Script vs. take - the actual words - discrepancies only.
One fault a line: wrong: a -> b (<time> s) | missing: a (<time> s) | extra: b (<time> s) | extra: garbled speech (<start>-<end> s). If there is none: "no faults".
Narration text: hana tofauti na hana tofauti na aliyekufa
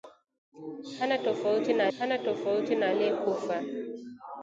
no faults